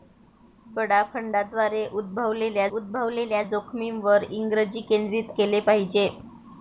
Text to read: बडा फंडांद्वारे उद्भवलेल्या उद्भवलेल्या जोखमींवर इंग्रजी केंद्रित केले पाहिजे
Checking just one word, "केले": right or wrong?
right